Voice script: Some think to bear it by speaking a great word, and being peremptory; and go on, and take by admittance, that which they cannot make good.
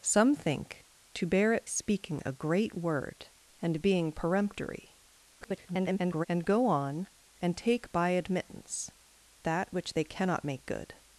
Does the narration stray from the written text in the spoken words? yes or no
yes